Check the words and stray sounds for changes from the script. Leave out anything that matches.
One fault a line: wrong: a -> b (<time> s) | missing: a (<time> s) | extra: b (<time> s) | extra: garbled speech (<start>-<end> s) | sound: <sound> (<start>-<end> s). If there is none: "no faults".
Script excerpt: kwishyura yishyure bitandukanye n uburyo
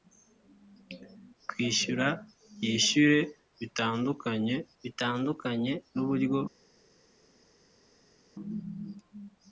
extra: bitandukanye (4.8 s)